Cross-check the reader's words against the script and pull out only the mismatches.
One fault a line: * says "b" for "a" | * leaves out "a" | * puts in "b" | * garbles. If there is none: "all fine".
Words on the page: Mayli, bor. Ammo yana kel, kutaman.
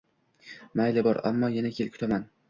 all fine